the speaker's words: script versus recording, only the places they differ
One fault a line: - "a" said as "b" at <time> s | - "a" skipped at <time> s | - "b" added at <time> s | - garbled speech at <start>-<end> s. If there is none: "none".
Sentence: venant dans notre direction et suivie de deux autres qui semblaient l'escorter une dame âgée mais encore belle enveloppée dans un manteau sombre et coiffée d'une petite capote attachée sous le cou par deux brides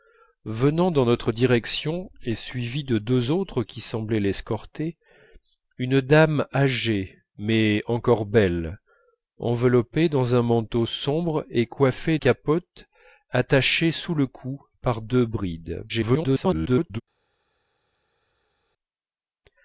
- "d'une petite" skipped at 12.2 s
- garbled speech at 15.9-17.0 s